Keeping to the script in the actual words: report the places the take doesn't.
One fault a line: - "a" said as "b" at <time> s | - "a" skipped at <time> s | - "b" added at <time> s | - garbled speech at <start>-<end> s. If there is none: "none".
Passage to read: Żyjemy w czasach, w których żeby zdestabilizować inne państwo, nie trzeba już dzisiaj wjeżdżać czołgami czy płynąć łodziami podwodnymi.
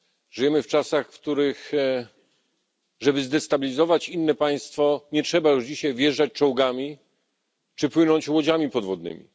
none